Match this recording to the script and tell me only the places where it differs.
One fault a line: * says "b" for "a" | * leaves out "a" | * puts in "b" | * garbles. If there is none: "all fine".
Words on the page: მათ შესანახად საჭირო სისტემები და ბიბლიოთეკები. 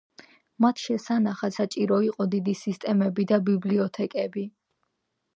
* puts in "იყო დიდი"